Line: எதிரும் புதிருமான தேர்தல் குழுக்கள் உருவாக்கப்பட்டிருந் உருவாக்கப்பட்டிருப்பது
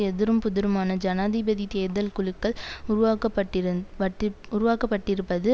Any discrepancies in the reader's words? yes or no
yes